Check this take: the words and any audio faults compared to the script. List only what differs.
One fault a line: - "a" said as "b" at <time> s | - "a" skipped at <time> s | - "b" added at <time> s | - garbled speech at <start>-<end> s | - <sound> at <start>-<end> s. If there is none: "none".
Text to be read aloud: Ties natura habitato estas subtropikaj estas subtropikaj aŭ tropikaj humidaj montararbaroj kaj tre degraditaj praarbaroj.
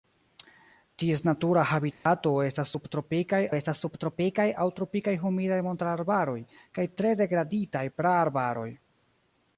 - dropout at 1.9-2.1 s